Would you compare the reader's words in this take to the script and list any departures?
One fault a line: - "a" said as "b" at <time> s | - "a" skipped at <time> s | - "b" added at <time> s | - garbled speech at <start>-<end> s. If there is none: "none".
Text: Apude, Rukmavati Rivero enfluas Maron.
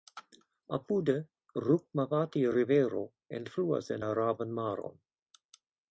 - "en Araban" added at 3.9 s